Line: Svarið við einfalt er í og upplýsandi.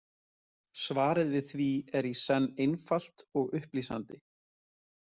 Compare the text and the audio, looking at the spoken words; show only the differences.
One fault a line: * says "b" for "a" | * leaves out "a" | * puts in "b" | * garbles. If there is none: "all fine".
* says "því" for "einfalt"
* puts in "senn einfalt"